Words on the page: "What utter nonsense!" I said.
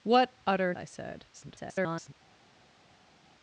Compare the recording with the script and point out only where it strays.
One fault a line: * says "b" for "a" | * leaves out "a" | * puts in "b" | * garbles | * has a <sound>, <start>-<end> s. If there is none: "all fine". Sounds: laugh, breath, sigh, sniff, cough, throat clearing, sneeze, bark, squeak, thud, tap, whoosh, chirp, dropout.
* leaves out "nonsense"
* garbles